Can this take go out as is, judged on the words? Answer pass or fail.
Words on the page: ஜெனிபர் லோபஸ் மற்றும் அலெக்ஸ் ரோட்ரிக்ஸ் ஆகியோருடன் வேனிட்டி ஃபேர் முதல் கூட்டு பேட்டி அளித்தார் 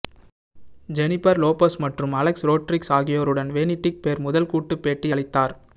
pass